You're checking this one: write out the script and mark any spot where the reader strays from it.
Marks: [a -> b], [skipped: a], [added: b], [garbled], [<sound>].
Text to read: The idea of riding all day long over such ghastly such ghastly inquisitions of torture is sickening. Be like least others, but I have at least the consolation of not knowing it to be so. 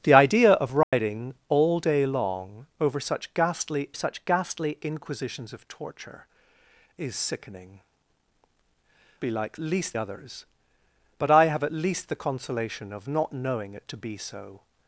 The idea of riding [dropout] all day long over such ghastly such ghastly inquisitions of torture is sickening. Be like least others, but I have at least the consolation of not knowing it to be so.